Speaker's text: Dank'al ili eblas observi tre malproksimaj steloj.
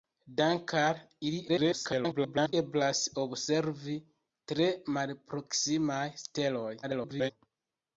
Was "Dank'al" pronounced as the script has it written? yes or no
yes